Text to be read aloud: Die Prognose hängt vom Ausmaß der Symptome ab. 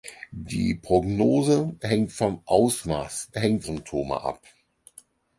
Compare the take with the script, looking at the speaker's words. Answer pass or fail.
fail